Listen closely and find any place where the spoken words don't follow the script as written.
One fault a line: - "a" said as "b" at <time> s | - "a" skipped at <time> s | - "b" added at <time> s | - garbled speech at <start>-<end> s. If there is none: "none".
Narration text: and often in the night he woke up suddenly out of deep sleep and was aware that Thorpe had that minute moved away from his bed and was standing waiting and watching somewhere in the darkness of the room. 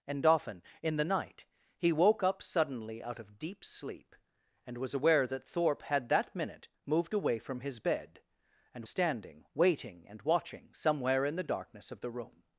- "was" skipped at 8.8 s